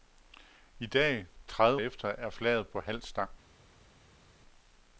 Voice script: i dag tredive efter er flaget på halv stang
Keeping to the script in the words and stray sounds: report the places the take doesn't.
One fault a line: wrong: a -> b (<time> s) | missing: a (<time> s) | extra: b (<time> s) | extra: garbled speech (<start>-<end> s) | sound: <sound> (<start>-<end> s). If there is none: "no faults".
no faults